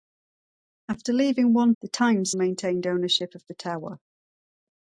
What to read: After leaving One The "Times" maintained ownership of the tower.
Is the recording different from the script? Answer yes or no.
no